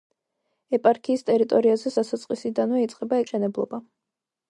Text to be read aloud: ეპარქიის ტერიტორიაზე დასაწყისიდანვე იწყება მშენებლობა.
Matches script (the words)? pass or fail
pass